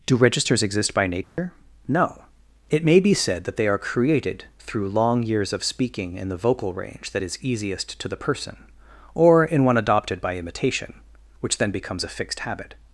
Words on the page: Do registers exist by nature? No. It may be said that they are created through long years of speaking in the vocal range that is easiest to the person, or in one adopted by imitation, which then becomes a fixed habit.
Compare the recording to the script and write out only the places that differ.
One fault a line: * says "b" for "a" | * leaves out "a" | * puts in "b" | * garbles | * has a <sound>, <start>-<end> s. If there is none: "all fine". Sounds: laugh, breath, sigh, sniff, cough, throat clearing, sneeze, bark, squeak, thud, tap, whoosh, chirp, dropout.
* has a dropout, 1.2-1.4 s